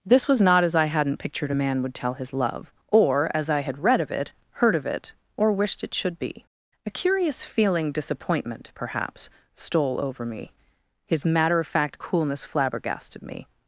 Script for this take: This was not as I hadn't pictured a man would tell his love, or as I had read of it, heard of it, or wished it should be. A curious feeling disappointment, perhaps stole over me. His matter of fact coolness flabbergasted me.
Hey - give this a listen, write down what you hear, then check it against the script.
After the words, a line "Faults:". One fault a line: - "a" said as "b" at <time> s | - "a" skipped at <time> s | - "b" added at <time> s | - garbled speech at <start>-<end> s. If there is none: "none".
This was not as I hadn't pictured a man would tell his love, or as I had read of it, heard of it, or wished it should be. A curious feeling disappointment, perhaps stole over me. His matter of fact coolness flabbergasted me.
Faults:
none